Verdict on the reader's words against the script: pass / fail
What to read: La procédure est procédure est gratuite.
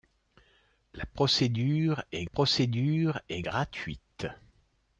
pass